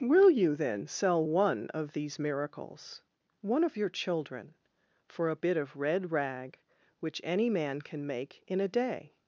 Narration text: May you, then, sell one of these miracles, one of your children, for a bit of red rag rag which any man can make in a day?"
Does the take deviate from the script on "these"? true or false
false